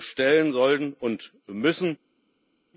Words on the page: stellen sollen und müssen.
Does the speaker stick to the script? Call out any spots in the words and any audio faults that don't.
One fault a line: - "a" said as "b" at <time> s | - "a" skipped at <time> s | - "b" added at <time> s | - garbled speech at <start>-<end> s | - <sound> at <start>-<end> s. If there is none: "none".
none